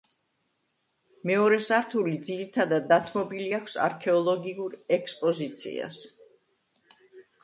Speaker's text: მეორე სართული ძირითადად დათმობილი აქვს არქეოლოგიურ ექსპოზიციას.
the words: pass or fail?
pass